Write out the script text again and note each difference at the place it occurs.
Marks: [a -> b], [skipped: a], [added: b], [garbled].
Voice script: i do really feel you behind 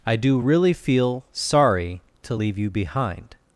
i do really feel [added: sorry to leave] you behind